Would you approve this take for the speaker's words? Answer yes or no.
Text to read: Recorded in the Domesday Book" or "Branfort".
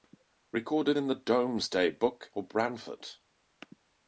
yes